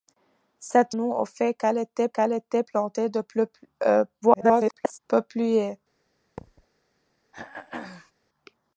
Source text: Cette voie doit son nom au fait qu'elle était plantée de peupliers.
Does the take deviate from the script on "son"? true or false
true